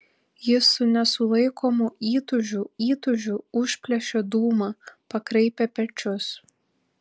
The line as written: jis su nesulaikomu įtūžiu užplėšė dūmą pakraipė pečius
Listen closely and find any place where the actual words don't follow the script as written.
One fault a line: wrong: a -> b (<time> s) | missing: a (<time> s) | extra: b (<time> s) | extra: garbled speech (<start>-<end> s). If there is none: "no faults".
extra: įtūžiu (2.9 s)